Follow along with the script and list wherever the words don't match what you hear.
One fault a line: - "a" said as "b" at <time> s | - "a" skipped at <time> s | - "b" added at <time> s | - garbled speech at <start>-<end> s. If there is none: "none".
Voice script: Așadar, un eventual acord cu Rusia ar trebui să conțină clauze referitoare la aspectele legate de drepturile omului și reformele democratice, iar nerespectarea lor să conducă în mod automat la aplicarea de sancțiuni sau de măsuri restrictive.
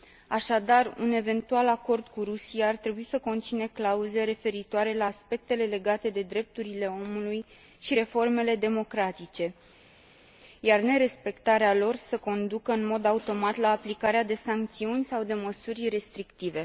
none